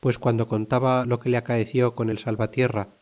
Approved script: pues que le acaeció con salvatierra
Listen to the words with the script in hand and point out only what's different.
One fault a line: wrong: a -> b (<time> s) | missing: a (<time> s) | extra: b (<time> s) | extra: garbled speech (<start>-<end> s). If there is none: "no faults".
extra: guando contaba lo (0.2 s)
extra: el (2.1 s)